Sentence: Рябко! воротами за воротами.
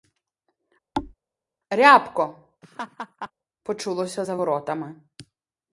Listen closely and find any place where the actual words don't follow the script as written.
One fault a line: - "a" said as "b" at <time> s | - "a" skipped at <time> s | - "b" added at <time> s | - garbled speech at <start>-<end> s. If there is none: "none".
- "воротами" said as "почулося" at 3.6 s